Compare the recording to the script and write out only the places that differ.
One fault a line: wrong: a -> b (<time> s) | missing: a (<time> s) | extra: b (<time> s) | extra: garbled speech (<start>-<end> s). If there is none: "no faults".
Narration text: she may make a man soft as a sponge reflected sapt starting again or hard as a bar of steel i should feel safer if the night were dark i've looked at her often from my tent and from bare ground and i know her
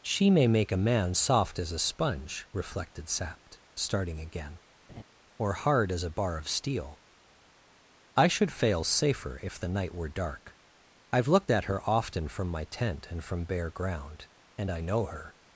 wrong: feel -> fail (8.5 s)